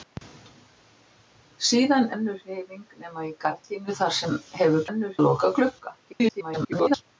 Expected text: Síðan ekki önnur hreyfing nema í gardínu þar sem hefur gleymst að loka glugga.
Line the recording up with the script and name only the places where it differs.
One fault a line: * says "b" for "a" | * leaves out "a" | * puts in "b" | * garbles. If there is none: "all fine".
* leaves out "ekki"
* says "önnur" for "gleymst"
* garbles